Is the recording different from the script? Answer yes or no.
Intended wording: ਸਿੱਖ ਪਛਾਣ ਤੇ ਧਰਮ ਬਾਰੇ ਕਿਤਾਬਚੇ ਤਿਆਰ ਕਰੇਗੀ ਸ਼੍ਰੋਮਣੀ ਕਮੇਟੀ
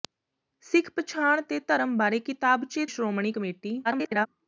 yes